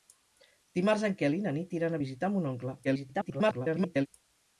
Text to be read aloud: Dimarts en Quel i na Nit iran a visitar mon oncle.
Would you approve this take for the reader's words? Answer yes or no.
no